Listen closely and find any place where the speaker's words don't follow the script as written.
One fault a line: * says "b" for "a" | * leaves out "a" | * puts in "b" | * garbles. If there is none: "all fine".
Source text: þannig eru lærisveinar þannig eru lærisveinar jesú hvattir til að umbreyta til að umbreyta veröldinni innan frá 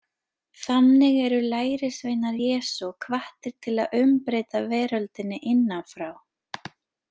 * leaves out "þannig eru lærisveinar"
* leaves out "til að umbreyta"